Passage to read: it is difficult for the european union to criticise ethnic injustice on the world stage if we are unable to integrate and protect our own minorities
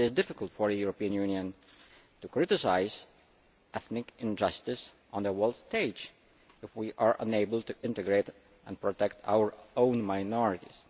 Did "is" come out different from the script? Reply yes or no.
no